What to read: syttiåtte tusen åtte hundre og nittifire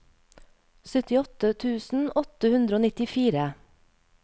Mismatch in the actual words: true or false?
false